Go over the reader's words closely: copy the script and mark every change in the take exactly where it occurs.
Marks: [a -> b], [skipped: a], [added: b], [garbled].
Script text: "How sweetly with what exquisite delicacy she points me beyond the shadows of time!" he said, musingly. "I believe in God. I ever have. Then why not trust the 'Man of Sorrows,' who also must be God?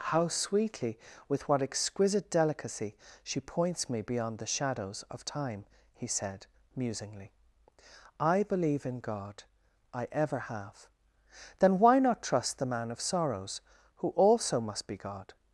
"How sweetly with what exquisite delicacy she points me beyond the shadows of time!" he said, musingly. "I believe in God. I ever have. Then why not trust the 'Man of Sorrows,' who also must be God?